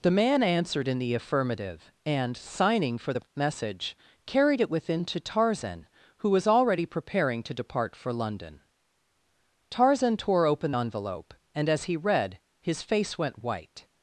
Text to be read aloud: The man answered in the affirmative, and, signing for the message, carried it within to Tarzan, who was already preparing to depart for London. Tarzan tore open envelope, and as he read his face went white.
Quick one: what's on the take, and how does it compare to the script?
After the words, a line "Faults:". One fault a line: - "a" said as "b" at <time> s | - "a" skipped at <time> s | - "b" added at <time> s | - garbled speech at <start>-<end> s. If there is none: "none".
The man answered in the affirmative, and, signing for the message, carried it within to Tarzan, who was already preparing to depart for London. Tarzan tore open envelope, and as he read his face went white.
Faults:
none